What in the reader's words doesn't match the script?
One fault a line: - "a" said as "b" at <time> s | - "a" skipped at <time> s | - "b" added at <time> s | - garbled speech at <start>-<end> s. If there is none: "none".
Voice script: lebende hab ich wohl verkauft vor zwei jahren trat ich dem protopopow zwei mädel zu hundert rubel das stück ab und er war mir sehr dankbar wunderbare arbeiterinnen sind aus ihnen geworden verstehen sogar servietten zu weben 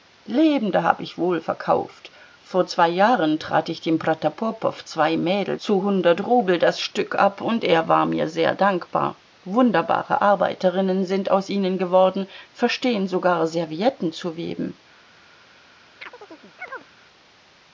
none